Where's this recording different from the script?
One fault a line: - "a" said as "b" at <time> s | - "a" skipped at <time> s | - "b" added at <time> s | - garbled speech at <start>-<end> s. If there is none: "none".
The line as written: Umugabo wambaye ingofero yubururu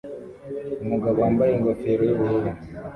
none